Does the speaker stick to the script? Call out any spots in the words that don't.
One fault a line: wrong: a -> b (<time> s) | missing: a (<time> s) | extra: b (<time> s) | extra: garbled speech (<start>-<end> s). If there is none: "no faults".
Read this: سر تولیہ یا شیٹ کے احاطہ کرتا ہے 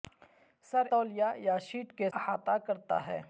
no faults